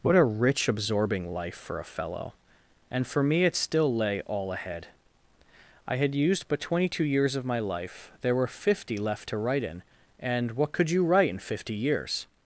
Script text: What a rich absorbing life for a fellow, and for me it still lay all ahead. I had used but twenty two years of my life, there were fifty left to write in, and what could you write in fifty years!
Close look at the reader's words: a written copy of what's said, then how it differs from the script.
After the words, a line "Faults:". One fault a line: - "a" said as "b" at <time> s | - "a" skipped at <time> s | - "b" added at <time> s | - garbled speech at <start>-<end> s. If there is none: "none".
What a rich absorbing life for a fellow, and for me it still lay all ahead. I had used but twenty two years of my life, there were fifty left to write in, and what could you write in fifty years!
Faults:
none